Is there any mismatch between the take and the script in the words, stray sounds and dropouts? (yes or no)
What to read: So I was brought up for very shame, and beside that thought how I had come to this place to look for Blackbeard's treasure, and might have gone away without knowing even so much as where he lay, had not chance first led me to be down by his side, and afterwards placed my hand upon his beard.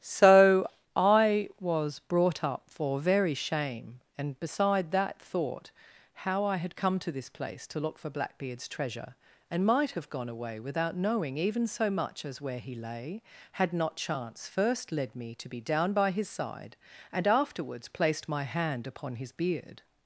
no